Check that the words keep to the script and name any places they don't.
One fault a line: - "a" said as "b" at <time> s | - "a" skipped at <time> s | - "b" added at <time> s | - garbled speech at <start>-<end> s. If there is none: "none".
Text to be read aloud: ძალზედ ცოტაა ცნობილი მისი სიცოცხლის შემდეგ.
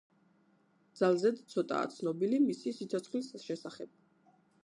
- "შემდეგ" said as "შესახებ" at 3.5 s